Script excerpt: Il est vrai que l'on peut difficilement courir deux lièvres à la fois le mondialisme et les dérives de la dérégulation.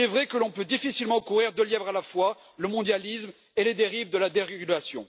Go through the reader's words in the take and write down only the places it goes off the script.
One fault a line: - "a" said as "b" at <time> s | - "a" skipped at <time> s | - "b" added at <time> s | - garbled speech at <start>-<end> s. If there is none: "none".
none